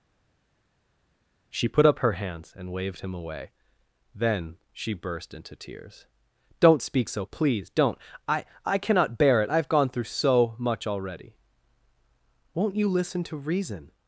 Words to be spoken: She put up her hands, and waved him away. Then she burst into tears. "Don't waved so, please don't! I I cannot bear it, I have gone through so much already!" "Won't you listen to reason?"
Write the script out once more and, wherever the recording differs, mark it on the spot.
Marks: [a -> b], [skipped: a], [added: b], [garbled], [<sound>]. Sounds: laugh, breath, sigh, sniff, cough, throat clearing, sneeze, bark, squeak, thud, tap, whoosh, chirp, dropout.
She put up her hands, and waved him away. Then she burst into tears. "Don't [waved -> speak] so, please don't! I I cannot bear it, I have gone through so much already!" "Won't you listen to reason?"